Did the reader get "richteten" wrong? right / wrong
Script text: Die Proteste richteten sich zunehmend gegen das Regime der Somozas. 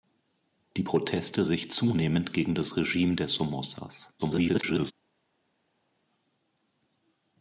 wrong